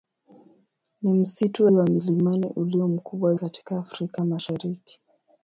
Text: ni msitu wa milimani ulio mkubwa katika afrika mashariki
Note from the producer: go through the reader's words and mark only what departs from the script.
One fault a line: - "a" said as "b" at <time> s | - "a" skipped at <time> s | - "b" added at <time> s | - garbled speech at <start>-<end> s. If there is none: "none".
none